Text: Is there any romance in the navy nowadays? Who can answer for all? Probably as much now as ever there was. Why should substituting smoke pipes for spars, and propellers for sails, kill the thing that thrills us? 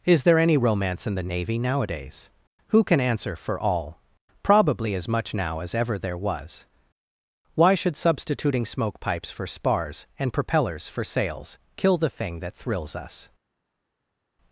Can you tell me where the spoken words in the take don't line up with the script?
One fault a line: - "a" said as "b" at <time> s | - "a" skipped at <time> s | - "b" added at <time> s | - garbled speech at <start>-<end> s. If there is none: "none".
none